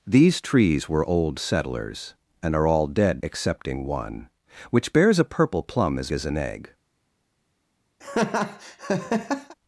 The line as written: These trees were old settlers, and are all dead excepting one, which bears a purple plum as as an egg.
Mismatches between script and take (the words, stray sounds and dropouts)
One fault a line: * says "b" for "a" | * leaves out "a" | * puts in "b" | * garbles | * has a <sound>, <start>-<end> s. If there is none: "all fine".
* has a laugh, 8.0-9.6 s